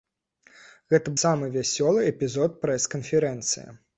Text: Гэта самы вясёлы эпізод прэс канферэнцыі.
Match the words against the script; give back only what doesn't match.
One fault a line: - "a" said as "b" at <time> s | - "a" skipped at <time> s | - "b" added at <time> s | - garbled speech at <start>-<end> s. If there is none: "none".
none